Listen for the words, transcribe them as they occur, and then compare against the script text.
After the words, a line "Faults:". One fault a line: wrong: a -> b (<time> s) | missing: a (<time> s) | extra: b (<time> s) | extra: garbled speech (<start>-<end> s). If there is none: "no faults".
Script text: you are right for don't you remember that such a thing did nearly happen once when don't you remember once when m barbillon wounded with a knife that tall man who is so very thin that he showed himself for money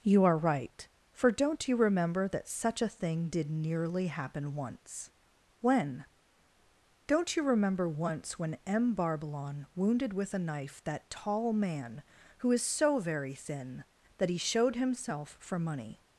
you are right for don't you remember that such a thing did nearly happen once when don't you remember once when m barbillon wounded with a knife that tall man who is so very thin that he showed himself for money
Faults:
no faults